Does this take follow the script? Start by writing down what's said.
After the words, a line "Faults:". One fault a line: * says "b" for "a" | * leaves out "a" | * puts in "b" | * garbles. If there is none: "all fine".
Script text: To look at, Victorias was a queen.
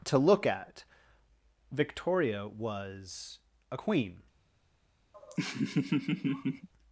To look at, Victoria was a queen.
Faults:
* says "Victoria" for "Victorias"